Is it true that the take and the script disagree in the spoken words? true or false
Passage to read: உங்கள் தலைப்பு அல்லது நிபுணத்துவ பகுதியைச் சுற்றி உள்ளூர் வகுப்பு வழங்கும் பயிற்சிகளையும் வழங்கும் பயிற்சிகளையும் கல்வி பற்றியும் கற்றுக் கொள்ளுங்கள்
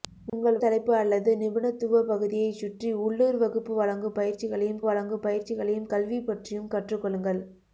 false